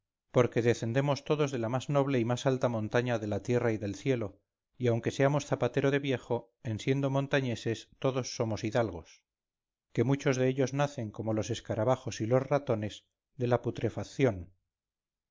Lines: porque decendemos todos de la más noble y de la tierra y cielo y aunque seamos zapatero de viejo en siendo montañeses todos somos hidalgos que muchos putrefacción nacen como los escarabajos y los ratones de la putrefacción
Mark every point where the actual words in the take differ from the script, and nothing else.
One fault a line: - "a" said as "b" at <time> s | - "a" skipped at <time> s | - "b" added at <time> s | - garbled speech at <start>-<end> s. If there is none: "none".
- "más alta montaña" added at 2.2 s
- "del" added at 3.8 s
- "putrefacción" said as "dellos" at 10.4 s